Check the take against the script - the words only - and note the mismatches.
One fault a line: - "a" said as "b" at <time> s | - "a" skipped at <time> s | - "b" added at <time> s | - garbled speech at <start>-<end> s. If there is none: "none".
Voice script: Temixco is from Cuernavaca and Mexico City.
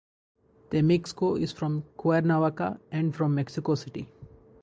- "from" added at 3.1 s